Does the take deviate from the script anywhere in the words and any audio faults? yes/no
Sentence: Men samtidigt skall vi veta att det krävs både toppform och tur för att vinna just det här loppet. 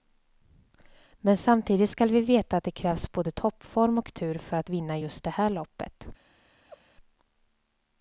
yes